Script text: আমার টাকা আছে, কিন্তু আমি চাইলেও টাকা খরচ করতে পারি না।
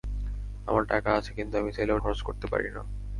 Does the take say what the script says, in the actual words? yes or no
no